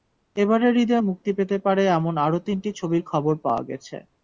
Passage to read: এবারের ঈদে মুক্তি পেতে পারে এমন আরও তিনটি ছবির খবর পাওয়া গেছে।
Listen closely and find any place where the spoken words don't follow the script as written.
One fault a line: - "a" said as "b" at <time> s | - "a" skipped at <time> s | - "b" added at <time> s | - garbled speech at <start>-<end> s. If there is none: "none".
none